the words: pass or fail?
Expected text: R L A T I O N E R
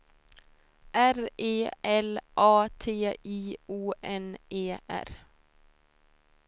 fail